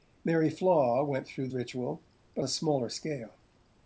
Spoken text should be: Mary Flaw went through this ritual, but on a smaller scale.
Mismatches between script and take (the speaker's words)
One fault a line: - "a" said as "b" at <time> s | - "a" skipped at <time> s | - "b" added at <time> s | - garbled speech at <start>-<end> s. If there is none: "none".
- "this" skipped at 1.5 s
- "on" skipped at 2.4 s